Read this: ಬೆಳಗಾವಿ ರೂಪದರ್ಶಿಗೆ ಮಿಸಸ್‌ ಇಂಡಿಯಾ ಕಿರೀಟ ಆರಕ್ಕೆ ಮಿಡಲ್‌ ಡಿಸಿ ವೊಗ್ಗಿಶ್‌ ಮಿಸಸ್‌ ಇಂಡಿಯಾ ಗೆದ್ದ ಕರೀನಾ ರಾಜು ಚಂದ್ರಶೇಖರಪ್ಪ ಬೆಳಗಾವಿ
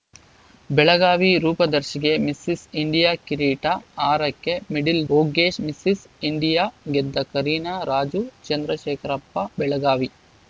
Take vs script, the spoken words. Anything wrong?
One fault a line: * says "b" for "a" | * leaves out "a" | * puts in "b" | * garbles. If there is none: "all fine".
* leaves out "ಡಿಸಿ"